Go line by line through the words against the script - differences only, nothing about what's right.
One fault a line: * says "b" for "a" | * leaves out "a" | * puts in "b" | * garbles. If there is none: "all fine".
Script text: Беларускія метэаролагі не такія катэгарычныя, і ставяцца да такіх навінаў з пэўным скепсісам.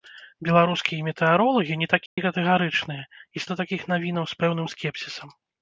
* leaves out "ставяцца"